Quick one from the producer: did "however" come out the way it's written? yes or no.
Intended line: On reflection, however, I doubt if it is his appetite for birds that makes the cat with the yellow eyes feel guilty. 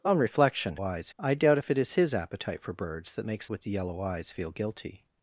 no